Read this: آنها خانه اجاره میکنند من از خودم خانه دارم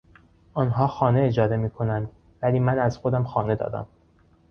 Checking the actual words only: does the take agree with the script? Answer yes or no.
no